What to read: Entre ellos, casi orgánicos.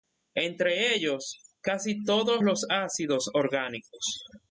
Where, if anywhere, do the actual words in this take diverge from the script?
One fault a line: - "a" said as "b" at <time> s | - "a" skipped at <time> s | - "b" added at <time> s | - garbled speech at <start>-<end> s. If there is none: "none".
- "todos los ácidos" added at 2.0 s